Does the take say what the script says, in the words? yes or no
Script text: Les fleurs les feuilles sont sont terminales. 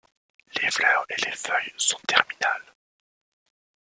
no